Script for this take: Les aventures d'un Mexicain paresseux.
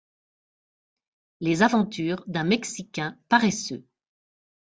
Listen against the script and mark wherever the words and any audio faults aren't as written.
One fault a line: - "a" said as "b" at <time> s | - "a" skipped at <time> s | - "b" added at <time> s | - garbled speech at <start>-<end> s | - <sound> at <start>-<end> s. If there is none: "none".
none